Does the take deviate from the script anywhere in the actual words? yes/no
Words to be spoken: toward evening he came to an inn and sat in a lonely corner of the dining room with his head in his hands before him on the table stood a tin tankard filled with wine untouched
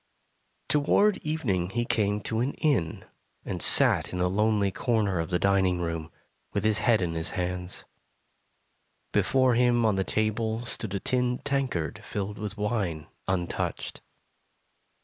no